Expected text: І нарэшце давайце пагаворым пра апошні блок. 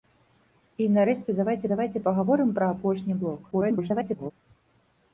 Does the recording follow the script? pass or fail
fail